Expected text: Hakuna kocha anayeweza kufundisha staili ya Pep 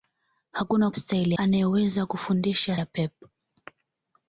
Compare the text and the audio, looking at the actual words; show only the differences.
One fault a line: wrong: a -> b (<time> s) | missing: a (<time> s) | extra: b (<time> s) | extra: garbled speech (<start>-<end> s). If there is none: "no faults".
wrong: kocha -> staili (0.9 s)
missing: staili (2.8 s)